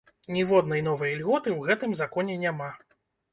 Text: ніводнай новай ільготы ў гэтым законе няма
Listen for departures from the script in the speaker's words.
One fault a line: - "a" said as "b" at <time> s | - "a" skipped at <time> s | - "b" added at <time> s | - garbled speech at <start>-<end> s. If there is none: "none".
none